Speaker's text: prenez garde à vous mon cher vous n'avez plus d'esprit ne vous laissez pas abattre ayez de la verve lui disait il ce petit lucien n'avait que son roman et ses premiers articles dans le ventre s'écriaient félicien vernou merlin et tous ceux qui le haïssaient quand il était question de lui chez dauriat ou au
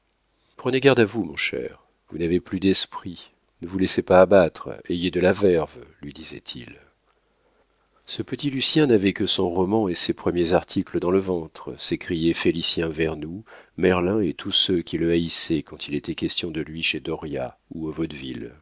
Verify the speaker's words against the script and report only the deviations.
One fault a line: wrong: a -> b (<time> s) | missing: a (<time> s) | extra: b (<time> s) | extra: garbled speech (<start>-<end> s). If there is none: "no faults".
no faults